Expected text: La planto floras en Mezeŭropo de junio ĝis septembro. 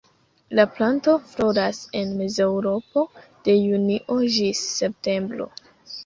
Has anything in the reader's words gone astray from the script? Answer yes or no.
no